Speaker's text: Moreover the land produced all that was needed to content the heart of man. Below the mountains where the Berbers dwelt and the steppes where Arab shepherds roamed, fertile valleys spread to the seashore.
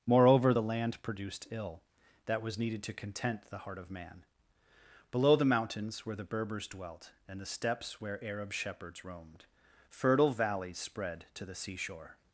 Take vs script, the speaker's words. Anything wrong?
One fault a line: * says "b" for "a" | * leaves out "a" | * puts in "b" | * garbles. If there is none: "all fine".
* says "ill" for "all"